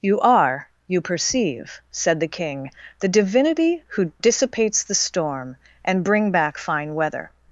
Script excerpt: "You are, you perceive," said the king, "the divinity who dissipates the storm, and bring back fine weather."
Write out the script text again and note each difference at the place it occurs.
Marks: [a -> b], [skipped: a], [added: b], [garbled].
"You are, you perceive," said the king, "the divinity who dissipates the storm, and bring back fine weather."